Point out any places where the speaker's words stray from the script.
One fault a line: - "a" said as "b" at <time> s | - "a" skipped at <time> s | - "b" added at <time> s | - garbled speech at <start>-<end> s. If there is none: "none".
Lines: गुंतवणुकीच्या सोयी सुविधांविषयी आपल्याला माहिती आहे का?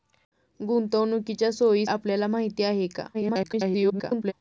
- "सुविधांविषयी" skipped at 1.9 s
- garbled speech at 3.1-4.3 s